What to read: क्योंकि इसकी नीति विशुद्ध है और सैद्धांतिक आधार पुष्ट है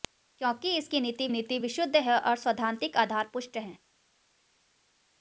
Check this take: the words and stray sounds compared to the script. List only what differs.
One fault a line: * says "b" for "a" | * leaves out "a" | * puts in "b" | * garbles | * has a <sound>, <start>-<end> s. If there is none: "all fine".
* puts in "नीति"